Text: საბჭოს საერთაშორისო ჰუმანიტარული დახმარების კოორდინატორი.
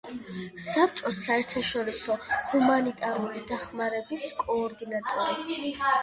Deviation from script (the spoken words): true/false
false